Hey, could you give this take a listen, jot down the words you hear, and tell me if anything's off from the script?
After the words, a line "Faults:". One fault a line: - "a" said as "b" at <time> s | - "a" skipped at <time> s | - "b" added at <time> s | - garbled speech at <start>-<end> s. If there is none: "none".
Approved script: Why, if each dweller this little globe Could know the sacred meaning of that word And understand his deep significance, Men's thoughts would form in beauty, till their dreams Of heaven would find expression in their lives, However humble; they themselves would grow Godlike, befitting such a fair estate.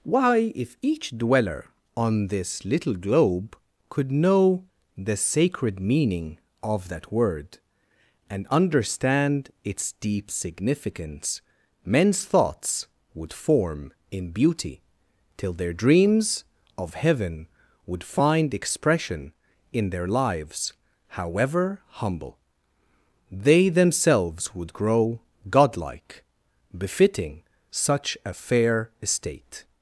Why, if each dweller on this little globe Could know the sacred meaning of that word And understand its deep significance, Men's thoughts would form in beauty, till their dreams Of heaven would find expression in their lives, However humble; they themselves would grow Godlike, befitting such a fair estate.
Faults:
- "on" added at 1.9 s
- "his" said as "its" at 9.6 s